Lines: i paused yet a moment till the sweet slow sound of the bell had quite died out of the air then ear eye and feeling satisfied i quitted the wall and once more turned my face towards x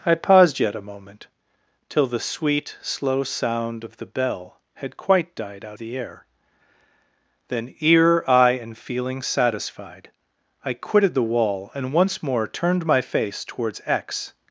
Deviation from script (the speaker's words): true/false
true